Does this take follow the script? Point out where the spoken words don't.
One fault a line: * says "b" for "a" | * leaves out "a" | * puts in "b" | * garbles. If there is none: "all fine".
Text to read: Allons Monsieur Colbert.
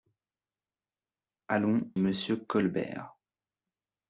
all fine